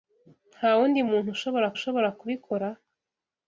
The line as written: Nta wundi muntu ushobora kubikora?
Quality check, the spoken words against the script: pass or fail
fail